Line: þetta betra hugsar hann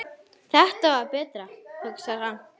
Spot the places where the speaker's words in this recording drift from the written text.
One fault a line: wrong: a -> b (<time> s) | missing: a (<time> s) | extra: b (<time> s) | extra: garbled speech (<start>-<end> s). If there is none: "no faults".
extra: var (0.9 s)